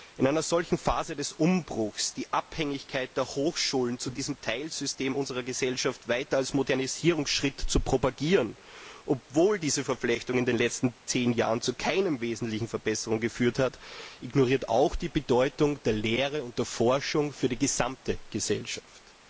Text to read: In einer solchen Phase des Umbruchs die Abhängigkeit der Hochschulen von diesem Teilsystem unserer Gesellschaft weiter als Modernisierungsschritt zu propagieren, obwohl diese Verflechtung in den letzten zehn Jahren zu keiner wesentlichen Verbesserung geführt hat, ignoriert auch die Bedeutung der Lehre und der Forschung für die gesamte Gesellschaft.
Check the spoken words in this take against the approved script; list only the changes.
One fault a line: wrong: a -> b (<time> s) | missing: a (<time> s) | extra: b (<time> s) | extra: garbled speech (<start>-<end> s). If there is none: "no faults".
no faults